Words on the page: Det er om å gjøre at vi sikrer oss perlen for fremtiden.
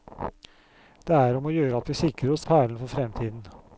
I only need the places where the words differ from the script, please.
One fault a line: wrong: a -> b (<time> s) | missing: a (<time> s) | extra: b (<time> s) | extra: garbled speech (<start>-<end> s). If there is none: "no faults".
no faults